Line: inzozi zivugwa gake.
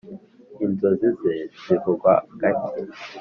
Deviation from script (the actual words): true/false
true